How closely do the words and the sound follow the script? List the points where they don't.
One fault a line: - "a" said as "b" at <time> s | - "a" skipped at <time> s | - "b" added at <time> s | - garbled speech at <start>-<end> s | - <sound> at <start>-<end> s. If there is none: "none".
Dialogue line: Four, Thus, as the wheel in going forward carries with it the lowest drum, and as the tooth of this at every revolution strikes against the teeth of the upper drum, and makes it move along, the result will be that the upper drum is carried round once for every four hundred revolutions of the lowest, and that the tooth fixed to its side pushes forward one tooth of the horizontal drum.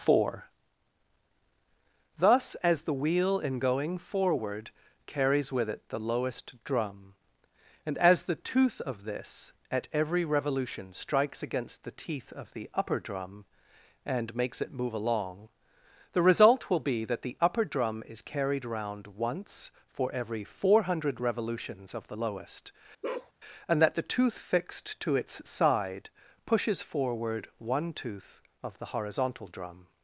- bark at 23.0-23.3 s